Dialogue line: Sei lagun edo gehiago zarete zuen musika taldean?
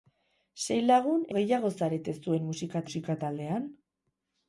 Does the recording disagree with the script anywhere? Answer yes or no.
yes